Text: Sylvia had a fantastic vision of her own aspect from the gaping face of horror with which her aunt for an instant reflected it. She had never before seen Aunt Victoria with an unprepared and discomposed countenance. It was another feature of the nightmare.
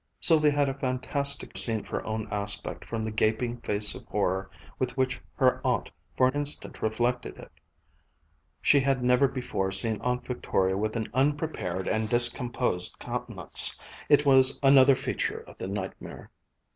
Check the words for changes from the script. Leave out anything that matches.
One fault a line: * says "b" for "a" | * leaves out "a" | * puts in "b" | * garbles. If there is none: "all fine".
* says "seen" for "vision"
* leaves out "an"